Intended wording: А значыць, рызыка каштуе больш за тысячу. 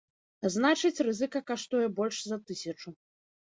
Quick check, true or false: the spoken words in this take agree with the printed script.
true